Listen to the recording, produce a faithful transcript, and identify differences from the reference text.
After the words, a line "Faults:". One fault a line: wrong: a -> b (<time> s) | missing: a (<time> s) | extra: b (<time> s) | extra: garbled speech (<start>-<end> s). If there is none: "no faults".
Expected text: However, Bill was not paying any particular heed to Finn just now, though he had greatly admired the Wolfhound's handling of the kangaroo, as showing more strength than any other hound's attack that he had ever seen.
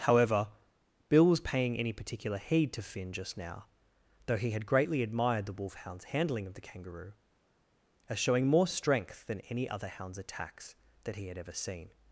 However, Bill was paying any particular heed to Finn just now, though he had greatly admired the Wolfhound's handling of the kangaroo, as showing more strength than any other hound's attacks that he had ever seen.
Faults:
missing: not (1.4 s)
wrong: attack -> attacks (10.2 s)